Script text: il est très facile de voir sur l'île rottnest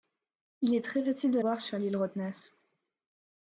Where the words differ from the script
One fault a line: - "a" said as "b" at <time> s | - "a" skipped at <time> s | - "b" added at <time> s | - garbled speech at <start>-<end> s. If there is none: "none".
none